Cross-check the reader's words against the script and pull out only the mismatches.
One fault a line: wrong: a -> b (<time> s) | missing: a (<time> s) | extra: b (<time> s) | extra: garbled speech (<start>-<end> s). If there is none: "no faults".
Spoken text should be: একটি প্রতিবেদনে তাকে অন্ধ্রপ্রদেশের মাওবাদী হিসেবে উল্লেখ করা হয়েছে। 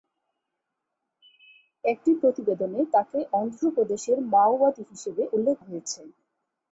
missing: করা (5.6 s)